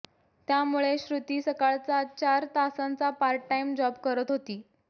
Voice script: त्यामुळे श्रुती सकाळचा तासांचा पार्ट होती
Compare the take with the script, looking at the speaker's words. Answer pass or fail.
fail